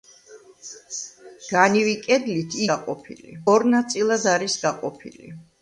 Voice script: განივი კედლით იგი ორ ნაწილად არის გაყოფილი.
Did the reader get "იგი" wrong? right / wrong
wrong